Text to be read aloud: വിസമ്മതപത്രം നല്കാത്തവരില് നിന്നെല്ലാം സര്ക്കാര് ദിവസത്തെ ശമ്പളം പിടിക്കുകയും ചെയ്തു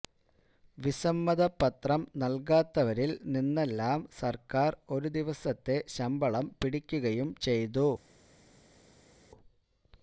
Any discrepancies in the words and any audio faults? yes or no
yes